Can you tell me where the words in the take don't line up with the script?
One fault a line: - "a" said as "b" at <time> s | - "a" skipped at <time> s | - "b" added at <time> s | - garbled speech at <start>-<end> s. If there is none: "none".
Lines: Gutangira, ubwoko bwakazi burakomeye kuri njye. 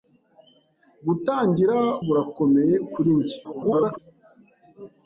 - "ubwoko bwakazi" skipped at 1.8 s
- garbled speech at 3.4-4.0 s